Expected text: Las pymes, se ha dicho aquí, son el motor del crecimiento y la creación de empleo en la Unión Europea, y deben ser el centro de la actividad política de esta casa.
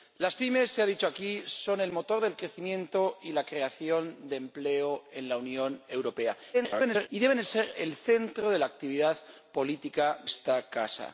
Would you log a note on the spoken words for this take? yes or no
yes